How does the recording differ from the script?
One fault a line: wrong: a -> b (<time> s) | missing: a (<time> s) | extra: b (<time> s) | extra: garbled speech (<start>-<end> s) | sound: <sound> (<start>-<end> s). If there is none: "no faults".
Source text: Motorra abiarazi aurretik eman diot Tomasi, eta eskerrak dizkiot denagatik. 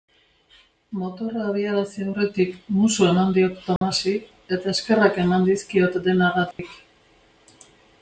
extra: musu (2.8 s)
sound: dropout (3.8-3.8 s)
extra: eman (5.3 s)
sound: dropout (6.5-6.6 s)